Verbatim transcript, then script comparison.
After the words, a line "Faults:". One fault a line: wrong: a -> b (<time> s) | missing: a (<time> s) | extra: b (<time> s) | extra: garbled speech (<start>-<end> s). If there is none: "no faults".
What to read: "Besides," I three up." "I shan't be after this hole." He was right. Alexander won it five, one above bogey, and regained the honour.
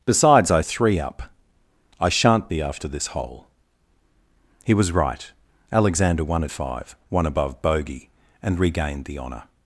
"Besides," I three up." "I shan't be after this hole." He was right. Alexander won it five, one above bogey, and regained the honour.
Faults:
no faults